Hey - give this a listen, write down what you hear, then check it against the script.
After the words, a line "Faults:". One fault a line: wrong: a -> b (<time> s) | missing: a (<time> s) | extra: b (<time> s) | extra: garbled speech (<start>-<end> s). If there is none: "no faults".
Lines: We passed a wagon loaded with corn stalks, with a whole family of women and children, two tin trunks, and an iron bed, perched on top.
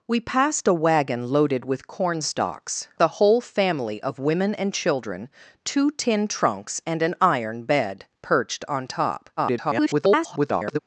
We passed a wagon loaded with corn stalks, a whole family of women and children, two tin trunks, and an iron bed, perched on top. [garbled]
Faults:
missing: with (2.9 s)
extra: garbled speech (9.4-10.8 s)